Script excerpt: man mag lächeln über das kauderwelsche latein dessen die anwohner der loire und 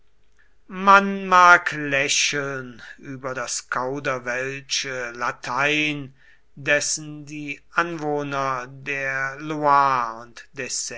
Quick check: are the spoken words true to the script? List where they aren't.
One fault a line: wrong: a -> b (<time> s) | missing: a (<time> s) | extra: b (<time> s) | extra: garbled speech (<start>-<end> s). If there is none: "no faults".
no faults